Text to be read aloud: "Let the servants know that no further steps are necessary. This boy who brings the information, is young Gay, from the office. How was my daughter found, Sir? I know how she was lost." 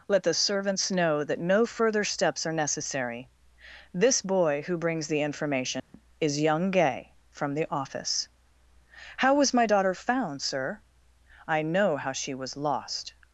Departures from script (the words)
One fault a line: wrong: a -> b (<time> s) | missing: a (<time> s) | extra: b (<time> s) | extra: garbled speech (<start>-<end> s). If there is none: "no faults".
no faults